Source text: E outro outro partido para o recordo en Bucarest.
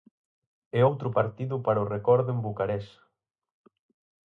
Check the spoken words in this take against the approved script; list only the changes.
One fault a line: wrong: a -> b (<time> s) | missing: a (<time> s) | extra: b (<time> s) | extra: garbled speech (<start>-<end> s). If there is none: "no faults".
missing: outro (1.1 s)